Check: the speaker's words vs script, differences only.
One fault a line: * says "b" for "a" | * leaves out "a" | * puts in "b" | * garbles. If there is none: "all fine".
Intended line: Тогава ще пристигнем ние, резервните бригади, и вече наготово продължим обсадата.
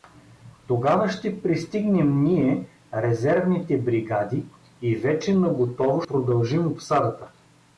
all fine